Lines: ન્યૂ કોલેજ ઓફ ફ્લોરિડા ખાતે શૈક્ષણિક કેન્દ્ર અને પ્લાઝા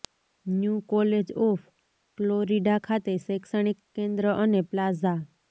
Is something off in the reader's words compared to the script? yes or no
no